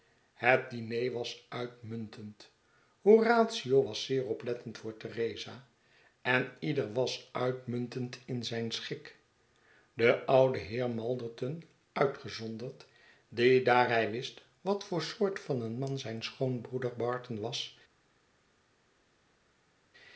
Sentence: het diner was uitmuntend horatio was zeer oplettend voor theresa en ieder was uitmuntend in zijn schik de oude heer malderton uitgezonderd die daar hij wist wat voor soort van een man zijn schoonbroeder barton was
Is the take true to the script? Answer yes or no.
yes